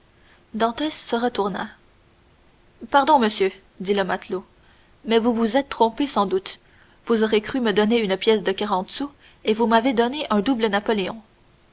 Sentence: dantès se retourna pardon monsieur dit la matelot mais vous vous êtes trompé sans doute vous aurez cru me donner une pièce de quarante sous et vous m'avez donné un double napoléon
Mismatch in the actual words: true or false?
true